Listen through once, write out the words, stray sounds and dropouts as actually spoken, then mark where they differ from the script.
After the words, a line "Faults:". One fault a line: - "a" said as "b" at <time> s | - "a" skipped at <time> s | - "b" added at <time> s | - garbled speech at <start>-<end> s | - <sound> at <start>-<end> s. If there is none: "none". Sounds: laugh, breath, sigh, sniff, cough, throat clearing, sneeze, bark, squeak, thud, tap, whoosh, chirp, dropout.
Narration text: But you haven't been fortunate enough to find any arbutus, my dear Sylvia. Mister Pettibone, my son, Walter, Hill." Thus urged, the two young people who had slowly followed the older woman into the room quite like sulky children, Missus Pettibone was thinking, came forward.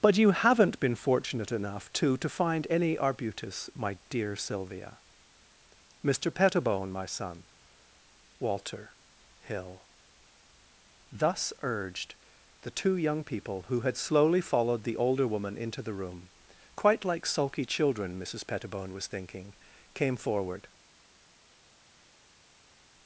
But you haven't been fortunate enough to to find any arbutus, my dear Sylvia. Mister Pettibone, my son, Walter, Hill." Thus urged, the two young people who had slowly followed the older woman into the room quite like sulky children, Missus Pettibone was thinking, came forward.
Faults:
- "to" added at 2.2 s